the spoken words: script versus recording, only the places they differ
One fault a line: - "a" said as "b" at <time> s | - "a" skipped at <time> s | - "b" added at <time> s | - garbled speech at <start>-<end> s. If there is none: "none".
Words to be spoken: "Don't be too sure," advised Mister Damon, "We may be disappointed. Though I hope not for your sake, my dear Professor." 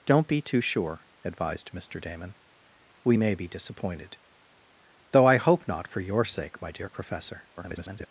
- garbled speech at 7.6-8.1 s